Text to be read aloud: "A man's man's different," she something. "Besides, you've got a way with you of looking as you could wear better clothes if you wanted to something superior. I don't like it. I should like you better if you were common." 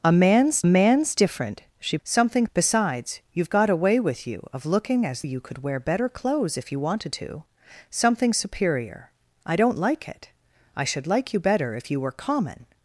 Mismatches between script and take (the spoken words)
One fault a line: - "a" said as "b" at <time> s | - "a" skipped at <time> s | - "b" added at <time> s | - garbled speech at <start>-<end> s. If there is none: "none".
none